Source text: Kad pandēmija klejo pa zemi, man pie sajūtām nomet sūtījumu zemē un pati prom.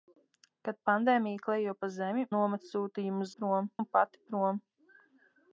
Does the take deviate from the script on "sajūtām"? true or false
true